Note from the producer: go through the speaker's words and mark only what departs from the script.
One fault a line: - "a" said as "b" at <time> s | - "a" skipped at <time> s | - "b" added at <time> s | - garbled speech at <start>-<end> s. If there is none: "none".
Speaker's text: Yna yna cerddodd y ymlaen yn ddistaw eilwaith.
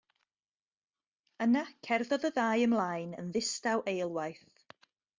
- "yna" skipped at 1.6 s
- "ddau" added at 2.4 s